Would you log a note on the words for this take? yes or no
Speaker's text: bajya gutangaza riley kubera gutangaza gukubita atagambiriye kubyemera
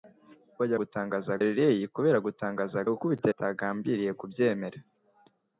no